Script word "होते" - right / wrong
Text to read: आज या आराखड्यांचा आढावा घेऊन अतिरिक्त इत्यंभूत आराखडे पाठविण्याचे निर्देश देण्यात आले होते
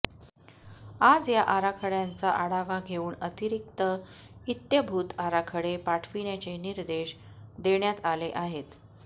wrong